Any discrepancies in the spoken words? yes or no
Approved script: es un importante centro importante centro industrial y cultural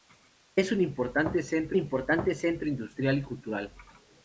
no